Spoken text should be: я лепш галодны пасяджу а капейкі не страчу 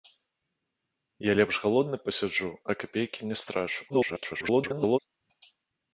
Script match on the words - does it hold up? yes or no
no